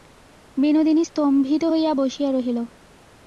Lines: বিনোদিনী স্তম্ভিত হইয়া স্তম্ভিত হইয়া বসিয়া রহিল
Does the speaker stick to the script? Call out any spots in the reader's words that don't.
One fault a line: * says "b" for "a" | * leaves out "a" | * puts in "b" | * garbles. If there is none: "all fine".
* leaves out "স্তম্ভিত হইয়া"